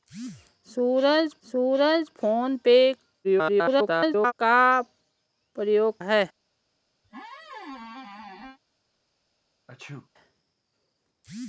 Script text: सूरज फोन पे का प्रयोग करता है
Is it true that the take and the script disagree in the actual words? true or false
true